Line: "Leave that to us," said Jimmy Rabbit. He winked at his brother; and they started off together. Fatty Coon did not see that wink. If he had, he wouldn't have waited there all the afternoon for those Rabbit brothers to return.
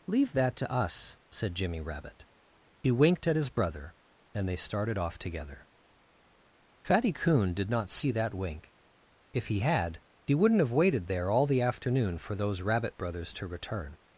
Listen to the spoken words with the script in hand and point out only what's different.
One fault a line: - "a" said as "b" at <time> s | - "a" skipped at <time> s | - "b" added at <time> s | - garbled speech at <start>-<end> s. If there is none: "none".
none